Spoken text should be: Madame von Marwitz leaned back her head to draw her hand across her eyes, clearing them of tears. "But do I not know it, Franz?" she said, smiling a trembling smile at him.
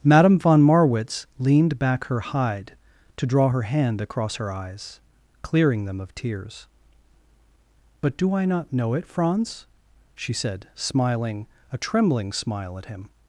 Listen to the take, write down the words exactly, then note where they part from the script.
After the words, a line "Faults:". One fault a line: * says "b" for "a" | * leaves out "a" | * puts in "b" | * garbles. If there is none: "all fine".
Madame von Marwitz leaned back her hide to draw her hand across her eyes, clearing them of tears. "But do I not know it, Franz?" she said, smiling a trembling smile at him.
Faults:
* says "hide" for "head"